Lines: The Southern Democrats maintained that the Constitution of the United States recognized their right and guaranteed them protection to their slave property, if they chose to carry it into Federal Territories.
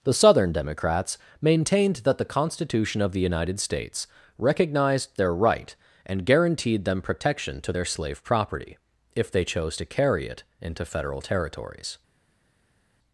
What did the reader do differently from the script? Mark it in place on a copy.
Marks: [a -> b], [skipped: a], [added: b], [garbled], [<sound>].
The Southern Democrats maintained that the Constitution of the United States recognized their right and guaranteed them protection to their slave property, if they chose to carry it into Federal Territories.